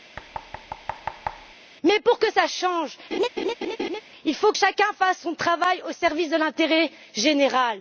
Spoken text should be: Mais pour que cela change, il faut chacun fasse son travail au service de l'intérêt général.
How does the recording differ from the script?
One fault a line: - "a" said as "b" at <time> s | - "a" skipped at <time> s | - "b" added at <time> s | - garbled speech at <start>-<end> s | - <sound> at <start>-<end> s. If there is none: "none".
- thud at 0.2-1.5 s
- laugh at 3.1-4.0 s